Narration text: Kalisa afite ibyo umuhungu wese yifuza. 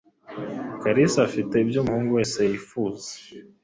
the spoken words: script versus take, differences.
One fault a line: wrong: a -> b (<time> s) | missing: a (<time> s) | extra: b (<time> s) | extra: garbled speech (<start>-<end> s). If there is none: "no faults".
no faults